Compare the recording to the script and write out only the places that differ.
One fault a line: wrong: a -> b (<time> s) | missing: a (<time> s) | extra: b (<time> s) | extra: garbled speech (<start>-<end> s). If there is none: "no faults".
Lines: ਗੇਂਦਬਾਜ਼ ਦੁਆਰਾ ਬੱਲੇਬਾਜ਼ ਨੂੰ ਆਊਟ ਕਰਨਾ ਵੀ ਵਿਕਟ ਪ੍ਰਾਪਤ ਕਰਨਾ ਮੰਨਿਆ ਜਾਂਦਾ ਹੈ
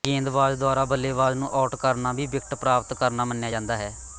no faults